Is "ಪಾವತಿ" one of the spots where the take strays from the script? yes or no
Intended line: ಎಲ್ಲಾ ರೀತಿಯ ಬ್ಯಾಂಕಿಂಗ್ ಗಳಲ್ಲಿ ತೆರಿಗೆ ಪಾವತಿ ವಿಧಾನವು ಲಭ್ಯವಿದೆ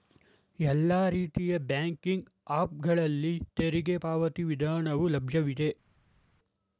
no